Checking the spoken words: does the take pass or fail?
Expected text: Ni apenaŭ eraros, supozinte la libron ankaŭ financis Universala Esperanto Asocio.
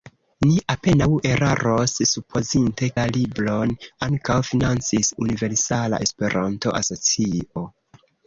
pass